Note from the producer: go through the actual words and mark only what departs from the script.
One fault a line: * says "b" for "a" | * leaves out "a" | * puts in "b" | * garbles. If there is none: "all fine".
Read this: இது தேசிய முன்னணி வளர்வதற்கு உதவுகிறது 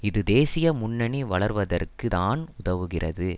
* puts in "தான்"